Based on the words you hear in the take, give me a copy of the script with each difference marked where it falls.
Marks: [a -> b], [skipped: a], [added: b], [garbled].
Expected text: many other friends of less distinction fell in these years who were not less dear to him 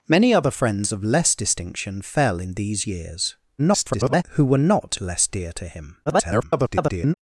many other friends of less distinction fell in these years [garbled] who were not less dear to him [garbled]